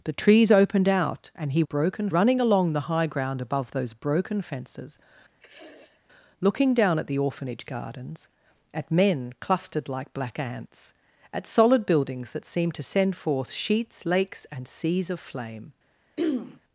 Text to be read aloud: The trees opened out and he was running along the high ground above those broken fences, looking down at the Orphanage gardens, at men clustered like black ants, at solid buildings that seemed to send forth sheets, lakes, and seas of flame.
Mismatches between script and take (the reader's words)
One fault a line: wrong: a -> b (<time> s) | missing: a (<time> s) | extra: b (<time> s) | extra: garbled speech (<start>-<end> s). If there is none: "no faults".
wrong: was -> broken (1.6 s)